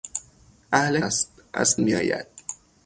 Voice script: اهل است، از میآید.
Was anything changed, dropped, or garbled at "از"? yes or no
no